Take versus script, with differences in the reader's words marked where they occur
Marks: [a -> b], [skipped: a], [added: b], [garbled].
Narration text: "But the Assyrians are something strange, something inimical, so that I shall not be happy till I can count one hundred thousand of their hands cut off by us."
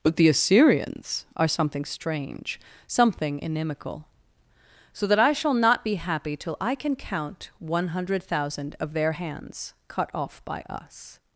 "But the Assyrians are something strange, something inimical, so that I shall not be happy till I can count one hundred thousand of their hands cut off by us."